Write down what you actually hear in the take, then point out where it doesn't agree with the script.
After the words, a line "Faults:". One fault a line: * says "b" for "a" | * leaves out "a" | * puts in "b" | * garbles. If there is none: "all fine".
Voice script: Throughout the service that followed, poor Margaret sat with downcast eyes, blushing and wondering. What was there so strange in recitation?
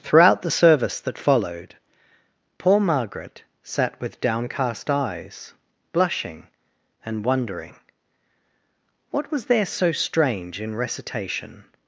Throughout the service that followed, poor Margaret sat with downcast eyes, blushing and wondering. What was there so strange in recitation?
Faults:
all fine